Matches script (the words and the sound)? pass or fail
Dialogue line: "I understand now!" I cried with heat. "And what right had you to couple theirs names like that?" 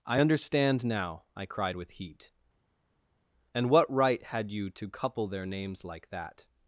fail